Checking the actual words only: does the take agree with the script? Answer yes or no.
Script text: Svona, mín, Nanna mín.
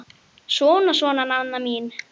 no